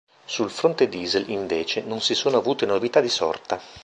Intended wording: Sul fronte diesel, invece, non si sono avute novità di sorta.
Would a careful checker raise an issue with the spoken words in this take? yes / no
no